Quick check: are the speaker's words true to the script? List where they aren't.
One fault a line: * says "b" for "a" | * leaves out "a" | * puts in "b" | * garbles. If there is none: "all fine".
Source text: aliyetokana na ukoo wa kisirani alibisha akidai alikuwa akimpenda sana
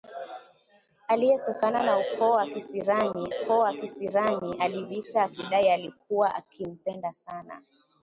* puts in "ukoo wa kisirani"